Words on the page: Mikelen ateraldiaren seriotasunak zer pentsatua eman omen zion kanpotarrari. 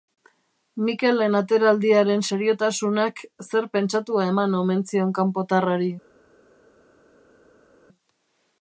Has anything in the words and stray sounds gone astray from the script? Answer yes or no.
no